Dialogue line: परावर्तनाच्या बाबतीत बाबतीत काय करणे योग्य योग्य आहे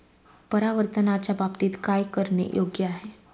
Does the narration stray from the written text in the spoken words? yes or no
yes